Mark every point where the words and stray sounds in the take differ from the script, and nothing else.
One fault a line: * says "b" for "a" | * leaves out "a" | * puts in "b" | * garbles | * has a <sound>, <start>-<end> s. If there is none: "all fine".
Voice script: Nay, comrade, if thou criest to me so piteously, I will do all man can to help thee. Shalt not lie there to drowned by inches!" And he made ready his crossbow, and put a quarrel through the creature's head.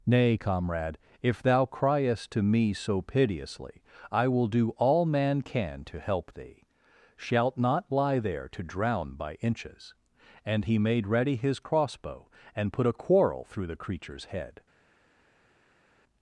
* says "drown" for "drowned"